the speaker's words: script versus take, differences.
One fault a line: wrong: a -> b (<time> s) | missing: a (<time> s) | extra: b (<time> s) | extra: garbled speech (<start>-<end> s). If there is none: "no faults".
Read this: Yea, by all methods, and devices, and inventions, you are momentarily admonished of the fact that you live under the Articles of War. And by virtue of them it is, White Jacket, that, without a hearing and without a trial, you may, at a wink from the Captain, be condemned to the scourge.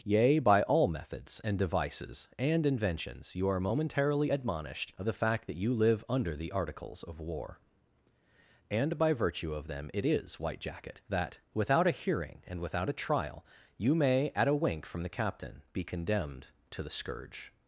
no faults